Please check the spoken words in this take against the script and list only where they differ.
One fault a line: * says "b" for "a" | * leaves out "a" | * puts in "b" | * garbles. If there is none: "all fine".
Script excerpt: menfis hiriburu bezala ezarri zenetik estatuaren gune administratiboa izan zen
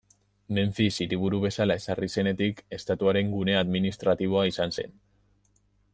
all fine